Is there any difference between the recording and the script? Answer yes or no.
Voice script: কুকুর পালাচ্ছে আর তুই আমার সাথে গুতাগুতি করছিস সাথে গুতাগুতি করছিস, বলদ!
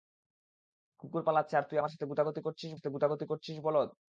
no